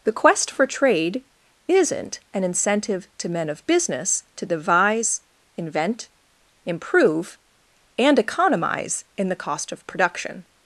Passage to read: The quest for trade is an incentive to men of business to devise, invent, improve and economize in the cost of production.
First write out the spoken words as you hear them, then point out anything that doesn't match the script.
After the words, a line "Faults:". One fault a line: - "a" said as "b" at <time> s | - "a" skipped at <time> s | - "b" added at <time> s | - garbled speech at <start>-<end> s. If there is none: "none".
The quest for trade isn't an incentive to men of business to devise, invent, improve and economize in the cost of production.
Faults:
- "is" said as "isn't" at 1.7 s